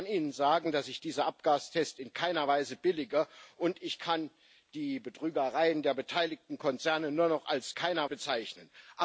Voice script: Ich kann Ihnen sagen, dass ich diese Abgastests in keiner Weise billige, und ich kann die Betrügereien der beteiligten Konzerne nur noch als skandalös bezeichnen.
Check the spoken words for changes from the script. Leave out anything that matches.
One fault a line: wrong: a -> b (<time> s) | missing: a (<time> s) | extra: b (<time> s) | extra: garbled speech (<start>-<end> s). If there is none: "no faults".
wrong: skandalös -> keiner (7.7 s)